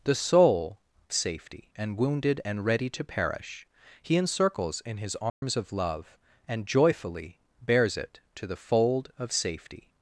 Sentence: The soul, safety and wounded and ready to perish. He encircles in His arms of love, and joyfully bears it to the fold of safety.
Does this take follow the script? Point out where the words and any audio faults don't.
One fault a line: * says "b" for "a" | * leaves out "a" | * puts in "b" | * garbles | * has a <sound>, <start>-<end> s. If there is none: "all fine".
* has a dropout, 5.3-5.4 s